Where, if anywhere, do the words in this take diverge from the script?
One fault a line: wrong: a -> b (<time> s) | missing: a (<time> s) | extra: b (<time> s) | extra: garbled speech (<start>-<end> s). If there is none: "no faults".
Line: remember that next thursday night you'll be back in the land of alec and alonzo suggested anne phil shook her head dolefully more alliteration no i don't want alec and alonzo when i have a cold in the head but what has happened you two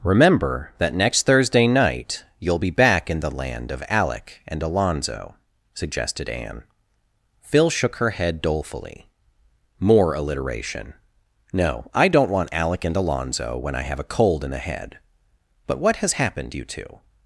no faults